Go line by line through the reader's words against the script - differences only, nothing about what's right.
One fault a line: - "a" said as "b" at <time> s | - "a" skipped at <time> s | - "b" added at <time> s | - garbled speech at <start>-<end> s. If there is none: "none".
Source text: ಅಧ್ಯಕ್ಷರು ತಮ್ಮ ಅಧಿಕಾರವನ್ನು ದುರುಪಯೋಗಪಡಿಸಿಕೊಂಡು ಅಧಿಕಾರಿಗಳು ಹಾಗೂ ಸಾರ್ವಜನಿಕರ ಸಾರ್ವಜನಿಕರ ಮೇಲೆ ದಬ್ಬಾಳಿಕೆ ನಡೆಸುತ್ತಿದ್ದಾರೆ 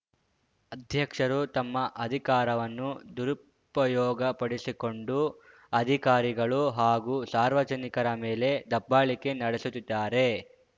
- "ಸಾರ್ವಜನಿಕರ" skipped at 8.1 s